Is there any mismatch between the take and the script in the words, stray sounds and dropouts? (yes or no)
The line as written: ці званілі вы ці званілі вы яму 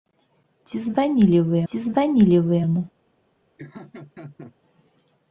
yes